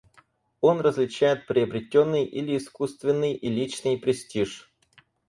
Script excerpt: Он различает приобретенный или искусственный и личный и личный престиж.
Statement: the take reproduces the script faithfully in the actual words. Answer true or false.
false